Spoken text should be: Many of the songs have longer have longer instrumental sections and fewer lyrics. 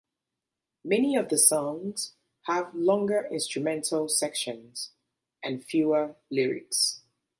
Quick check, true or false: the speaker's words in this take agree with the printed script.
false